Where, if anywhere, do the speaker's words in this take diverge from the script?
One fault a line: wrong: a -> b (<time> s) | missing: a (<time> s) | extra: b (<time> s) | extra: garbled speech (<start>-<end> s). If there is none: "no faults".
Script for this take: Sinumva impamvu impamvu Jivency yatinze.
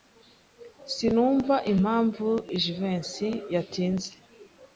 missing: impamvu (2.3 s)